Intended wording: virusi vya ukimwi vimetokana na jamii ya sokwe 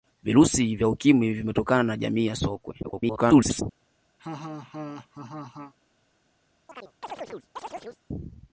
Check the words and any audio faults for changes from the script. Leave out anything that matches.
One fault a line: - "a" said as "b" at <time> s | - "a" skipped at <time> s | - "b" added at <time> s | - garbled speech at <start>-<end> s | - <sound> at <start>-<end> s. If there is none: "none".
- garbled speech at 2.8-3.6 s
- laugh at 4.2-5.7 s
- chirp at 6.7-8.0 s